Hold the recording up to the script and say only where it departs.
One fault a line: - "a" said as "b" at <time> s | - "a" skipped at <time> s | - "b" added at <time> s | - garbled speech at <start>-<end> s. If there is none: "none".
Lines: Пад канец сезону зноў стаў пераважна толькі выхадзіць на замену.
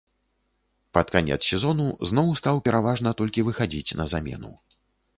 none